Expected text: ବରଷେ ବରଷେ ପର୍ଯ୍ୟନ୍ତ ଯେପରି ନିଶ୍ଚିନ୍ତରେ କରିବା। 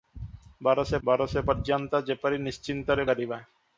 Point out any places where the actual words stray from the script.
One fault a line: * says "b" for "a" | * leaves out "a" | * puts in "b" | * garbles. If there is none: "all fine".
all fine